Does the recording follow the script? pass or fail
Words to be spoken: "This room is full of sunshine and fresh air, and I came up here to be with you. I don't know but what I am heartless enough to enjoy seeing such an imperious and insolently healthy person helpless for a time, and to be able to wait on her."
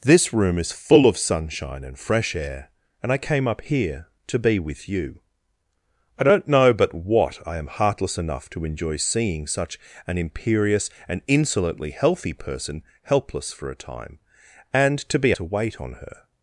fail